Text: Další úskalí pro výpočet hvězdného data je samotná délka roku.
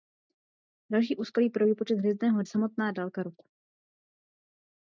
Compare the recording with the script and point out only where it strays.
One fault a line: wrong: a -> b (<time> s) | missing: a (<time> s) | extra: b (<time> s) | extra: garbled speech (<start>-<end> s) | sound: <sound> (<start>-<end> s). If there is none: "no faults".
missing: data je (2.4 s)